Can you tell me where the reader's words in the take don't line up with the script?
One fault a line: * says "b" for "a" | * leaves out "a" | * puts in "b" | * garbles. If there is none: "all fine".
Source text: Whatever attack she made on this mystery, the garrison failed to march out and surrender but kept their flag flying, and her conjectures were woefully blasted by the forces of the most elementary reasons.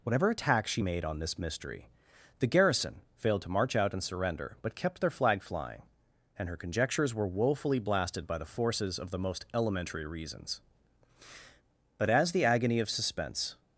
* puts in "But as the agony of suspense"